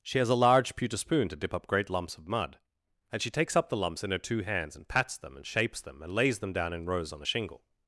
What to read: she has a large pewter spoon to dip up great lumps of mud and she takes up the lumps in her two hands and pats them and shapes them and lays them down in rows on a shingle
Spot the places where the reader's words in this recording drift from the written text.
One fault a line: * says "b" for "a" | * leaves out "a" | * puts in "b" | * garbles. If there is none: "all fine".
all fine